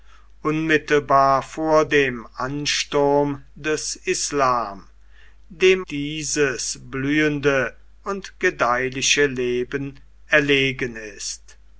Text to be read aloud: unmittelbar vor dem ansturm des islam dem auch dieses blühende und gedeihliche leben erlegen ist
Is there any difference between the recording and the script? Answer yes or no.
yes